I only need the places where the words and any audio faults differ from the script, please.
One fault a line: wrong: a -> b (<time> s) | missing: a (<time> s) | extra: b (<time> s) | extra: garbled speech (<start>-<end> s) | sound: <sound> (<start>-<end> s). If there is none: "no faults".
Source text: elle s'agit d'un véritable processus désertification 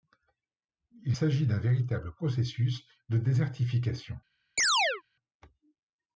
wrong: elle -> il (1.0 s)
extra: de (3.1 s)
sound: chirp (4.6-5.0 s)